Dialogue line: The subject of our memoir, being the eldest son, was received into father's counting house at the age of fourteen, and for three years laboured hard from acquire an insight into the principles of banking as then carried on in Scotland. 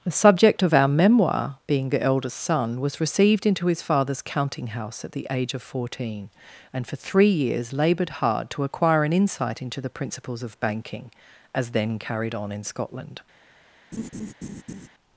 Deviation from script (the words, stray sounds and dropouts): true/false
true